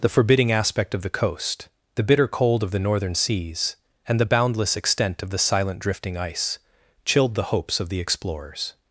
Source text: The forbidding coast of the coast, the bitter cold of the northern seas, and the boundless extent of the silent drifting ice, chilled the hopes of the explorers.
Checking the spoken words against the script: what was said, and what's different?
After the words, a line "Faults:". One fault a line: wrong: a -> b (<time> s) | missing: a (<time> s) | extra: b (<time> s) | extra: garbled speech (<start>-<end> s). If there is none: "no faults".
The forbidding aspect of the coast, the bitter cold of the northern seas, and the boundless extent of the silent drifting ice, chilled the hopes of the explorers.
Faults:
wrong: coast -> aspect (0.5 s)